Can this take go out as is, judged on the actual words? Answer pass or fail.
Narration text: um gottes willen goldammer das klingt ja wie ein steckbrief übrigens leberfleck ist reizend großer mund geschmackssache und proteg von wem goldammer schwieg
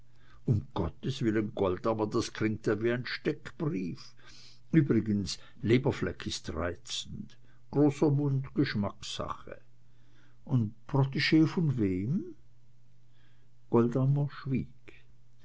pass